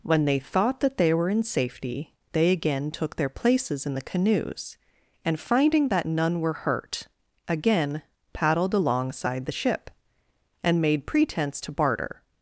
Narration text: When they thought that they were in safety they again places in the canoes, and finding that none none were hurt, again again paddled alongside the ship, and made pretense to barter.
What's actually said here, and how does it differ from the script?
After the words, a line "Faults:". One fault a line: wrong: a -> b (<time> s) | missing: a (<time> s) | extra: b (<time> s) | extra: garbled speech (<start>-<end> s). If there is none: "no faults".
When they thought that they were in safety they again took their places in the canoes, and finding that none were hurt, again paddled alongside the ship, and made pretense to barter.
Faults:
extra: took their (2.9 s)
missing: none (6.4 s)
missing: again (8.0 s)